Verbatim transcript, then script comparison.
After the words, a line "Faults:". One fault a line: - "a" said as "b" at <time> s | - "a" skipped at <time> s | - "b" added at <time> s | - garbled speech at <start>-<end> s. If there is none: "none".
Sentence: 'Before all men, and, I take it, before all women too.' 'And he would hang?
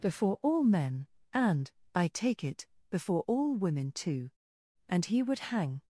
'Before all men, and, I take it, before all women too.' 'And he would hang?
Faults:
none